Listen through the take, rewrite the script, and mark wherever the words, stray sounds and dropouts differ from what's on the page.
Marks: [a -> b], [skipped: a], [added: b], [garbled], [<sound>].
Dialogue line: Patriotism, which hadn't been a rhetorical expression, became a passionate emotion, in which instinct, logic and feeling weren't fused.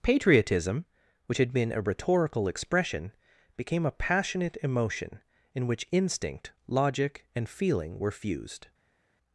Patriotism, which [hadn't -> had] been a rhetorical expression, became a passionate emotion, in which instinct, logic and feeling [weren't -> were] fused.